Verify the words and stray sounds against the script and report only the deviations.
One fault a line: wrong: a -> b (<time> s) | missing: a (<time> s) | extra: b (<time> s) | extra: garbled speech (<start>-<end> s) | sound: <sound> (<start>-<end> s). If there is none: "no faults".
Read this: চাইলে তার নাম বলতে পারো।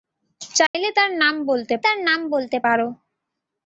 sound: dropout (0.7-0.7 s)
extra: তার নাম বলতে (1.8 s)